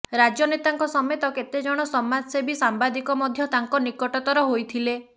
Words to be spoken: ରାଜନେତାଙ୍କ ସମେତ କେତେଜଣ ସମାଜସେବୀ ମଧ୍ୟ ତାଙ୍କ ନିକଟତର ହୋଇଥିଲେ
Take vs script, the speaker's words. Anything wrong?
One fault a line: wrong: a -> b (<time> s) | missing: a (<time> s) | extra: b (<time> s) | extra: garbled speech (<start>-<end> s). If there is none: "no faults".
extra: ସାମ୍ବାଦିକ (2.6 s)